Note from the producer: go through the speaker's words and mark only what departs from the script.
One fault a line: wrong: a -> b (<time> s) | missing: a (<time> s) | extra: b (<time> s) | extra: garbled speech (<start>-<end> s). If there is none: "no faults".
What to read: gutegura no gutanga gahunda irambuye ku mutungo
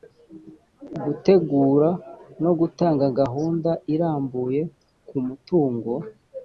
no faults